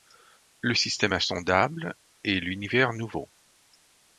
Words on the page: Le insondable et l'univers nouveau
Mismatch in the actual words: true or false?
true